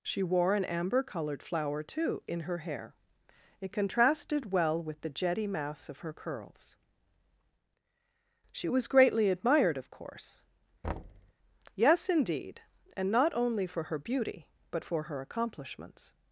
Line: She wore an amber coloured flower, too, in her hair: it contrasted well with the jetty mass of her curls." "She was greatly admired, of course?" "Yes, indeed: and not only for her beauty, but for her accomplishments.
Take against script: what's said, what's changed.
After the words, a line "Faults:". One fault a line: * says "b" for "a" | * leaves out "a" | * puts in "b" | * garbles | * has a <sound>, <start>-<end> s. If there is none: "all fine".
She wore an amber coloured flower, too, in her hair: it contrasted well with the jetty mass of her curls." "She was greatly admired, of course?" "Yes, indeed: and not only for her beauty, but for her accomplishments.
Faults:
* has a thud, 10.8-11.3 s